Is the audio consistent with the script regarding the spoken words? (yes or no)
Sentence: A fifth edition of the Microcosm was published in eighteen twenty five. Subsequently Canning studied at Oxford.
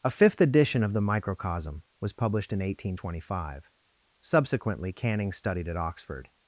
yes